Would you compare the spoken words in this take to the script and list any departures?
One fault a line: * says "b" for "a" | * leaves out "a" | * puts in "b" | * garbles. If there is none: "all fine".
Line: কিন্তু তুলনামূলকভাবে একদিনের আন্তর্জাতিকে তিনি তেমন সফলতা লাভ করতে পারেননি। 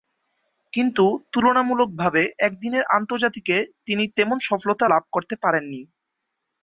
all fine